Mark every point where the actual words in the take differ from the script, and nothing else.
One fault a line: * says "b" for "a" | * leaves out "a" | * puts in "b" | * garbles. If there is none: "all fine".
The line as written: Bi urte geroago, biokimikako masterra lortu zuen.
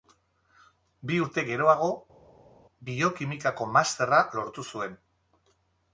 all fine